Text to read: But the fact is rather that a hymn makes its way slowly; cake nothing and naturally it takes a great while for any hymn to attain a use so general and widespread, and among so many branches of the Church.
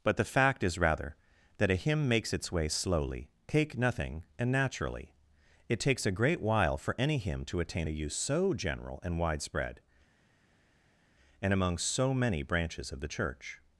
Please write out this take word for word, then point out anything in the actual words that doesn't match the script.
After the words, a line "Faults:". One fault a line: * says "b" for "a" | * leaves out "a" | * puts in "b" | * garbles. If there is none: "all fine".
But the fact is rather that a hymn makes its way slowly; cake nothing and naturally it takes a great while for any hymn to attain a use so general and widespread, and among so many branches of the Church.
Faults:
all fine